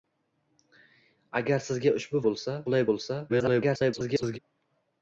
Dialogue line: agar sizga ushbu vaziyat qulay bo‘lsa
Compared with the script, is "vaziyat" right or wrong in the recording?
wrong